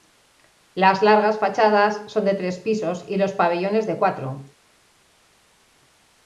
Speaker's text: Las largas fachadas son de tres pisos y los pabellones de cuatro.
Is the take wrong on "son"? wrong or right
right